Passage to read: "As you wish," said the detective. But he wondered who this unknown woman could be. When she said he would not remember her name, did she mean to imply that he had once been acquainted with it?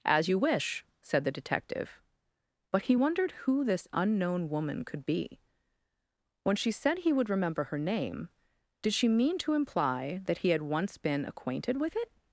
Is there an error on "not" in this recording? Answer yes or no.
yes